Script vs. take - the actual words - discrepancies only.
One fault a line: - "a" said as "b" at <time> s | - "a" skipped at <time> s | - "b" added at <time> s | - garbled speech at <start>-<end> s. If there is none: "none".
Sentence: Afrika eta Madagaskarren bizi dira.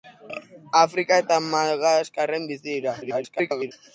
- garbled speech at 3.0-3.7 s